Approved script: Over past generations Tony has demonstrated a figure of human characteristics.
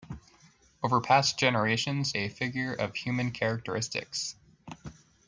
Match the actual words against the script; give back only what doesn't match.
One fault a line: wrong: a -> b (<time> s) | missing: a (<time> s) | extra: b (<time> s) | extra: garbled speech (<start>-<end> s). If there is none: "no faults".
missing: Tony has demonstrated (2.1 s)